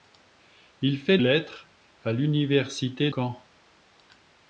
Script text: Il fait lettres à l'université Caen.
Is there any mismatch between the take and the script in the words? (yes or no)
no